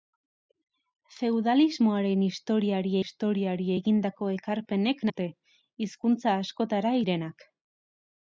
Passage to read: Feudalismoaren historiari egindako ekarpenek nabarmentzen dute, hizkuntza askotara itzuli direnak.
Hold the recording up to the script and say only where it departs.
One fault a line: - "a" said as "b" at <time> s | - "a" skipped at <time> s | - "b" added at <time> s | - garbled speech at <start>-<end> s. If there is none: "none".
- "historiari" added at 3.0 s
- "nabarmentzen" skipped at 5.0 s
- "itzuli" skipped at 7.0 s